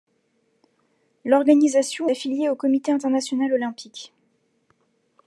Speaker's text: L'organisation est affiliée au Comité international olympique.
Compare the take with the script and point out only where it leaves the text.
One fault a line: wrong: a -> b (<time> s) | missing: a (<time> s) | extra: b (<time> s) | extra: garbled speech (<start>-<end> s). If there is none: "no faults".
missing: est (2.1 s)